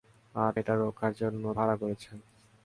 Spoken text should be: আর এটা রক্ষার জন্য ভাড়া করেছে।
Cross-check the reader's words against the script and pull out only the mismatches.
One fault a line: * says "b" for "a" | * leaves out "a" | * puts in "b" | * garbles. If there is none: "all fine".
all fine